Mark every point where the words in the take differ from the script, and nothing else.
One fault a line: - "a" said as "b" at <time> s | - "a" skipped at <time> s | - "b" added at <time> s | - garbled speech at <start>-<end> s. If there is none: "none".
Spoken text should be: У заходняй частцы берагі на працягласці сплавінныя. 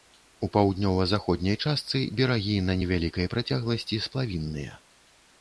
- "паўднёва" added at 0.6 s
- "невялікай" added at 2.8 s